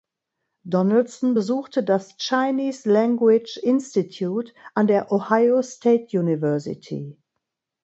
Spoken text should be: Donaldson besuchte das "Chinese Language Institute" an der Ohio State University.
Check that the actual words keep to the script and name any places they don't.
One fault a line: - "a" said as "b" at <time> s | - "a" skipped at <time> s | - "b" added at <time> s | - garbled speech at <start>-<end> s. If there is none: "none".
none